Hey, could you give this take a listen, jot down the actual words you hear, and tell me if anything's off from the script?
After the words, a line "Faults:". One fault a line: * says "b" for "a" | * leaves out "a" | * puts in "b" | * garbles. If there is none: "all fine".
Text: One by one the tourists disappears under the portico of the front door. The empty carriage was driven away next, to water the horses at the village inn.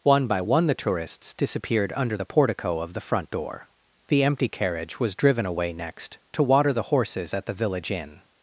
One by one the tourists disappeared under the portico of the front door. The empty carriage was driven away next, to water the horses at the village inn.
Faults:
* says "disappeared" for "disappears"